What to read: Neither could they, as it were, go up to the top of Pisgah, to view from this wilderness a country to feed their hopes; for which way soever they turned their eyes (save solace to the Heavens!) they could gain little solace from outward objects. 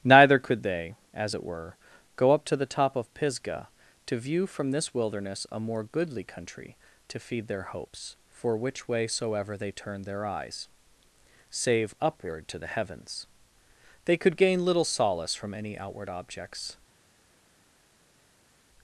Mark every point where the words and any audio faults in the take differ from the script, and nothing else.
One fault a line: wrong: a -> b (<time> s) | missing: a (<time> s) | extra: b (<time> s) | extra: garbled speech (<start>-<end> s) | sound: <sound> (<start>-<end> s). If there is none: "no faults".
extra: more goodly (5.6 s)
wrong: solace -> upward (12.0 s)
extra: any (15.5 s)